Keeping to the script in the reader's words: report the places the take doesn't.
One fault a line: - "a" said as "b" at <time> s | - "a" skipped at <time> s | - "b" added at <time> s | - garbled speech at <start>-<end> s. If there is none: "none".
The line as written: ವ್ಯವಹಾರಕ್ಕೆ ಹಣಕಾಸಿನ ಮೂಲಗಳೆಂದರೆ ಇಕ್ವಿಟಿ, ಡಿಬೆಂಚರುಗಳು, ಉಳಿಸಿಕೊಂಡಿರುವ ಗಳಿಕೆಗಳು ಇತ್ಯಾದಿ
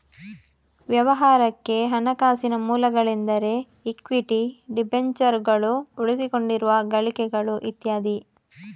none